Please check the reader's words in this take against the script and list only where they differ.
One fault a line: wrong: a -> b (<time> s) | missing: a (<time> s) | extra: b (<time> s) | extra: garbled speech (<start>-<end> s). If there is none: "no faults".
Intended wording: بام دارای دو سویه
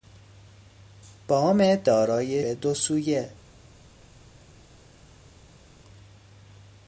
no faults